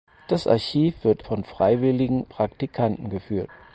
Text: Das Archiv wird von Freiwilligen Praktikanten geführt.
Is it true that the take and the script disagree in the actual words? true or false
false